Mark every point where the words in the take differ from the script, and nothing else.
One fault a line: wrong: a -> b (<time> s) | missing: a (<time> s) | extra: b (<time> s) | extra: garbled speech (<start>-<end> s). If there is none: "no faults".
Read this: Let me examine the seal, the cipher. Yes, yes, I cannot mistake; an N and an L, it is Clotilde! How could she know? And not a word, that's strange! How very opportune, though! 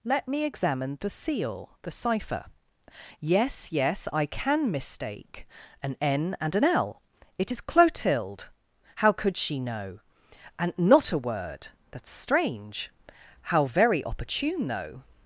wrong: cannot -> can (4.2 s)